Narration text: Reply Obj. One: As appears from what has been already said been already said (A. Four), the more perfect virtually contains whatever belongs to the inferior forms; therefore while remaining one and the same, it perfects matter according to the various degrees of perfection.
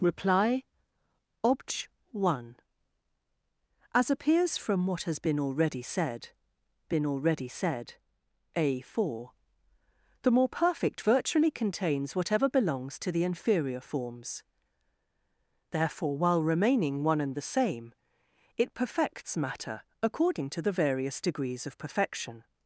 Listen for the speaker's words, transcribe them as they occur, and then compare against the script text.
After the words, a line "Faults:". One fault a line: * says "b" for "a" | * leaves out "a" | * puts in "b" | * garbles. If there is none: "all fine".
Reply Obj. One: As appears from what has been already said been already said (A. Four), the more perfect virtually contains whatever belongs to the inferior forms; therefore while remaining one and the same, it perfects matter according to the various degrees of perfection.
Faults:
all fine